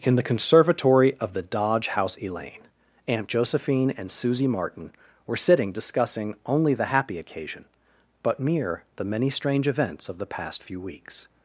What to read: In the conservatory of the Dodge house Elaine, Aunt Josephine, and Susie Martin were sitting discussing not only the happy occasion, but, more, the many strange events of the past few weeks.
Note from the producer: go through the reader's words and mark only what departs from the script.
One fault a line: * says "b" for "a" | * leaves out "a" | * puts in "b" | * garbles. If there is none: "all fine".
* leaves out "not"
* says "mere" for "more"